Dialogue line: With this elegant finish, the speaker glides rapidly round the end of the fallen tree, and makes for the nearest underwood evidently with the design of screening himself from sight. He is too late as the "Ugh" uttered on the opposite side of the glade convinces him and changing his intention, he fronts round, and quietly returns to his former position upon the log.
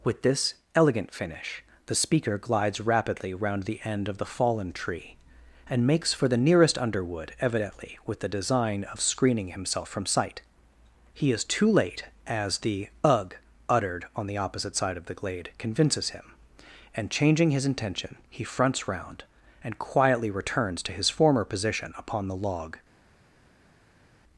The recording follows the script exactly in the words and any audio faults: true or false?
true